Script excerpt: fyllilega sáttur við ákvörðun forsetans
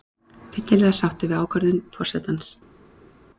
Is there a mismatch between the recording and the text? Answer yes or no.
no